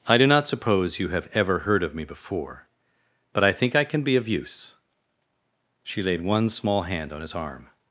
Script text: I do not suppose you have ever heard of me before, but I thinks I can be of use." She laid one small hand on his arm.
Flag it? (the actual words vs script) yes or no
yes